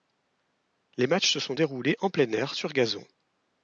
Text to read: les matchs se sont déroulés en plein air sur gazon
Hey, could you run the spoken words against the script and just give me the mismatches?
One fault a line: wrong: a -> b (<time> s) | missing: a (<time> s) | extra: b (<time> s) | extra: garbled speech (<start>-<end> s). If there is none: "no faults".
no faults